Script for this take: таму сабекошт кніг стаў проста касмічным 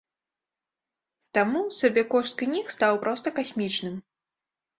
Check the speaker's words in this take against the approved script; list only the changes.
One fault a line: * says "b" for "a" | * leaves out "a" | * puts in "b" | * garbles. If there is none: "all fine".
all fine